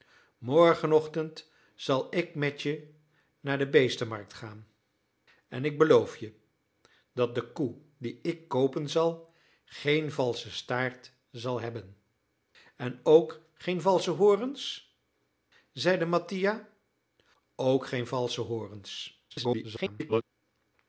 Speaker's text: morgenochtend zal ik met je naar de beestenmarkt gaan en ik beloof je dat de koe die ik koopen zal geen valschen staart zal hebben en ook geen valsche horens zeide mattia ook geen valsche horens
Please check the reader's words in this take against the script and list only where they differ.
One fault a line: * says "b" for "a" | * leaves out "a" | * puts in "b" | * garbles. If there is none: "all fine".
* garbles